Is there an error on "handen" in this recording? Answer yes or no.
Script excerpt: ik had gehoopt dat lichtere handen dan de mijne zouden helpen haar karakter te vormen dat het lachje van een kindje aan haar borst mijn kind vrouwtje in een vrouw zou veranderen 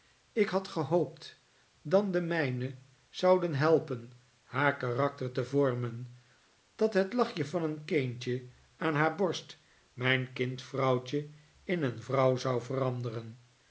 yes